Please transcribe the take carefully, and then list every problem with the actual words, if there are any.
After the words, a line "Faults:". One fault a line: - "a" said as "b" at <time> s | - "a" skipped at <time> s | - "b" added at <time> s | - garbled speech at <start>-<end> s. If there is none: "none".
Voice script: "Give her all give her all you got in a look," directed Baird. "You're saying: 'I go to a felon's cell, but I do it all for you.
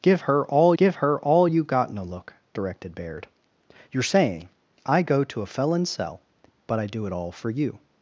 "Give her all give her all you got in a look," directed Baird. "You're saying: 'I go to a felon's cell, but I do it all for you.
Faults:
none